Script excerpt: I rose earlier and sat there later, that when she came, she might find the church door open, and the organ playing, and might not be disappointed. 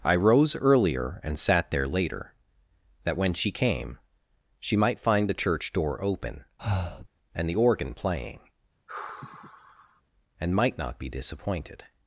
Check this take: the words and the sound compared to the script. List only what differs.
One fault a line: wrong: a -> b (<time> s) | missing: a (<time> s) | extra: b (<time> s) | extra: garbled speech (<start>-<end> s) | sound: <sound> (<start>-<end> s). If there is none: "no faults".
sound: breath (6.6-7.1 s)
sound: sigh (8.9-10.0 s)